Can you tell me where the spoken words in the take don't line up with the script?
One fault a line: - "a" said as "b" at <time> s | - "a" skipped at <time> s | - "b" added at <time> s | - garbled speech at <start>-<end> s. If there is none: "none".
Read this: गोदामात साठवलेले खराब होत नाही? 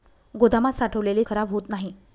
none